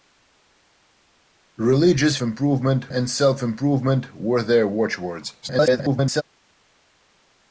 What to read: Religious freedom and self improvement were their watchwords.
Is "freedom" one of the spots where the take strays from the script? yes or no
yes